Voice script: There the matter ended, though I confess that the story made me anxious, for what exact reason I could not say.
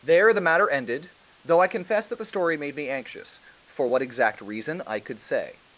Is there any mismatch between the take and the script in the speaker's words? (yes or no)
yes